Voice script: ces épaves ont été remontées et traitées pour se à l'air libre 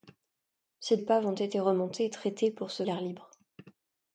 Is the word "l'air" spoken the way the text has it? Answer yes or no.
yes